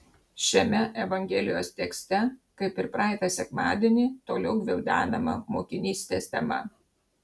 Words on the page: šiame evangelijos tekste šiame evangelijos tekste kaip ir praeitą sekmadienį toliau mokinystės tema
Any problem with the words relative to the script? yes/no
yes